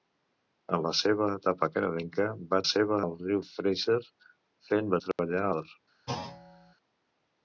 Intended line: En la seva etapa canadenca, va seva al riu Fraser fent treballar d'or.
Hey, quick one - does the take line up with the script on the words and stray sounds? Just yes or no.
no